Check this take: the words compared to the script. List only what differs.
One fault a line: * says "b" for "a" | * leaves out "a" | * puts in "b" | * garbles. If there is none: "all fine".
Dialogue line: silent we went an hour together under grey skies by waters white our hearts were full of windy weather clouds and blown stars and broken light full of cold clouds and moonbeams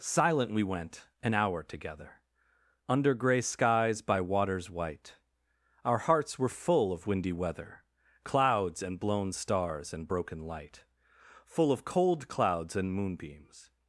all fine